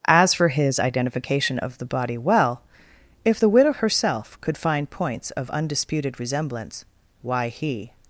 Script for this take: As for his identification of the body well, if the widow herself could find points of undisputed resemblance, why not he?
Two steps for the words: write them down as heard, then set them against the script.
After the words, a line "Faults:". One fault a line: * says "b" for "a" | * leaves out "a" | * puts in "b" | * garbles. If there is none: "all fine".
As for his identification of the body well, if the widow herself could find points of undisputed resemblance, why he?
Faults:
* leaves out "not"